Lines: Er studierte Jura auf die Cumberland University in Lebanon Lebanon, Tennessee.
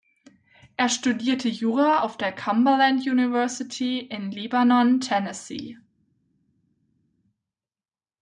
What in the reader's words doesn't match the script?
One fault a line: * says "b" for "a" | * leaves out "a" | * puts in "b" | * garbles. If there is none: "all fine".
* says "der" for "die"
* leaves out "Lebanon"